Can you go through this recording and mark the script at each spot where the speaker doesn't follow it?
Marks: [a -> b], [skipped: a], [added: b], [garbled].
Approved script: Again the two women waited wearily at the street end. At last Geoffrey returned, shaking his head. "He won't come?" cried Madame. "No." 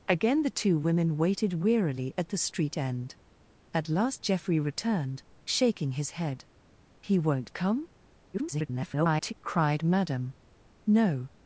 Again the two women waited wearily at the street end. At last Geoffrey returned, shaking his head. "He won't come?" [garbled] cried Madame. "No."